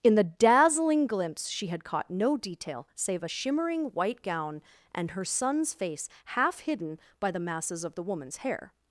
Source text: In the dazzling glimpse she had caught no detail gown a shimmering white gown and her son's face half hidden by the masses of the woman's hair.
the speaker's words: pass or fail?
fail